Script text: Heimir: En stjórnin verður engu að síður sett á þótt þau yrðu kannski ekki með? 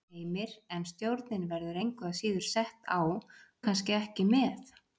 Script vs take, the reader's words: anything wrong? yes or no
yes